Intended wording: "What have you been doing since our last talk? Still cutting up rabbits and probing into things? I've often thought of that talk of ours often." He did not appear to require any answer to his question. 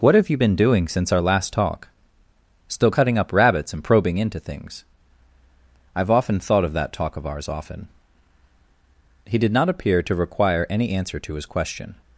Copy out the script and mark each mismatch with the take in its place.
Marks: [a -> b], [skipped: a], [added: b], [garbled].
"What have you been doing since our last talk? Still cutting up rabbits and probing into things? I've often thought of that talk of ours often." He did not appear to require any answer to his question.